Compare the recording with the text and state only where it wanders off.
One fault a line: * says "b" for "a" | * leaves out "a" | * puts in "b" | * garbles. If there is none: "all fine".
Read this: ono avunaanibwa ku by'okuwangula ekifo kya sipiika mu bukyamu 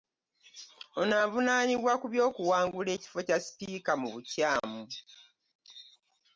all fine